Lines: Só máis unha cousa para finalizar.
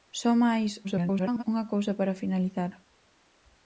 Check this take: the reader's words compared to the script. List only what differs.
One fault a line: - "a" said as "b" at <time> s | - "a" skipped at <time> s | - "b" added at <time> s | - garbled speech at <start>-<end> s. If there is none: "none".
- garbled speech at 0.8-1.4 s